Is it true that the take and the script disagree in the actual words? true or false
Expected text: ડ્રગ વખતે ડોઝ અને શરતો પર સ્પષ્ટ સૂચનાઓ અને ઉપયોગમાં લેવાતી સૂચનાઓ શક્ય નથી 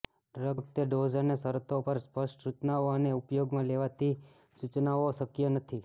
false